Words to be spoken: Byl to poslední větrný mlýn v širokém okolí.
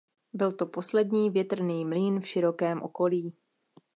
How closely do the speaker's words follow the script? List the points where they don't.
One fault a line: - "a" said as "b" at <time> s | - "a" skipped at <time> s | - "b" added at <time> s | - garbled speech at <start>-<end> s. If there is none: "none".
none